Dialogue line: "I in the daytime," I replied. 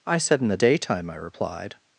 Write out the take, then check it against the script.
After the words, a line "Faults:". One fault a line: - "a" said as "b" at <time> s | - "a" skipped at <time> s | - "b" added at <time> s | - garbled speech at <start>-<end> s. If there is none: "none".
"I said in the daytime," I replied.
Faults:
- "said" added at 0.2 s